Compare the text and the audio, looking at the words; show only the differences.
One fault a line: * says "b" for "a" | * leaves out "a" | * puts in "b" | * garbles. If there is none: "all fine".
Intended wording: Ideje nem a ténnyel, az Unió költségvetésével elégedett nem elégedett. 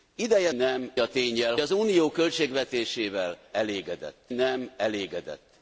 all fine